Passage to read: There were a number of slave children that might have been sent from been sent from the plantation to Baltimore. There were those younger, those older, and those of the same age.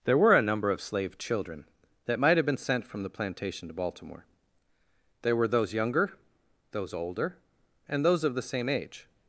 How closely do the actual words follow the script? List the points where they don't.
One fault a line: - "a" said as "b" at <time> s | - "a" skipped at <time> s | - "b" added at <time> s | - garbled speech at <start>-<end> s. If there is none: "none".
- "been sent from" skipped at 3.0 s